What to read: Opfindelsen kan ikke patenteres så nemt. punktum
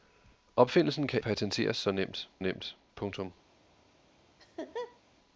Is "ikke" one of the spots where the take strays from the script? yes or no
yes